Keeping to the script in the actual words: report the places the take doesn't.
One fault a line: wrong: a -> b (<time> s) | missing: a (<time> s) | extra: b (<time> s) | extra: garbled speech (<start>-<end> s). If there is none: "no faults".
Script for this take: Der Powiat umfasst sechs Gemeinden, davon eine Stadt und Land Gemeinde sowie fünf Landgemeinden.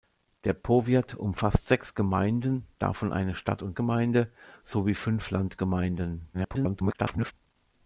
missing: Land (3.8 s)
extra: garbled speech (6.3-7.3 s)